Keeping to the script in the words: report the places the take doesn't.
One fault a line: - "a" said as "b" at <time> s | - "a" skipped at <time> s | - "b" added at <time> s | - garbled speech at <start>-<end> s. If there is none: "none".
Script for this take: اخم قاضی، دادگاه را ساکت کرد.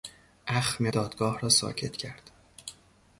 - "قاضی" skipped at 0.9 s